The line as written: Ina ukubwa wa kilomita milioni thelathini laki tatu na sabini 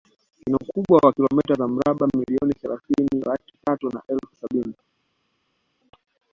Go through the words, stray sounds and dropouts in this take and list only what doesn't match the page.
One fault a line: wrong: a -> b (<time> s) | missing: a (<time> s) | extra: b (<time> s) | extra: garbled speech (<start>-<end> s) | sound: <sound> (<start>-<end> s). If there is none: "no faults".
extra: za mraba (1.5 s)
extra: elfu (4.1 s)